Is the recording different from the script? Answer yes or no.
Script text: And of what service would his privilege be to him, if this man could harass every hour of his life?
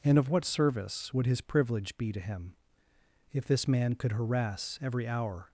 yes